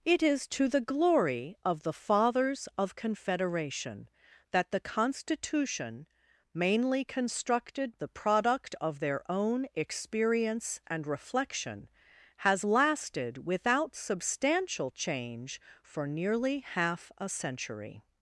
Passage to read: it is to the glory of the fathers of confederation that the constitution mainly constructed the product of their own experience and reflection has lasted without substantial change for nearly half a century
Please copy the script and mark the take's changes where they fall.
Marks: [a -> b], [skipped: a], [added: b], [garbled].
it is to the glory of the fathers of confederation that the constitution mainly constructed the product of their own experience and reflection has lasted without substantial change for nearly half a century